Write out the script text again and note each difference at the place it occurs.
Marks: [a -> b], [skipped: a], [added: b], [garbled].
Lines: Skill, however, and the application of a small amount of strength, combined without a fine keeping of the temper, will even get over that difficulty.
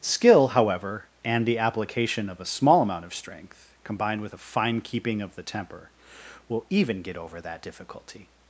Skill, however, and the application of a small amount of strength, combined [without -> with] a fine keeping of the temper, will even get over that difficulty.